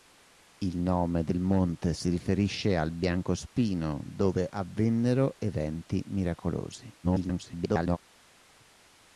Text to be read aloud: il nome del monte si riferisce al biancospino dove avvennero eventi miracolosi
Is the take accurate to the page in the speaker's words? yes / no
no